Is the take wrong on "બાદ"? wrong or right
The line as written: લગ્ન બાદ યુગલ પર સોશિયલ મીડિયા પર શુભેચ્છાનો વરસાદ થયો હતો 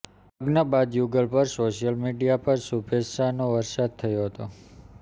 right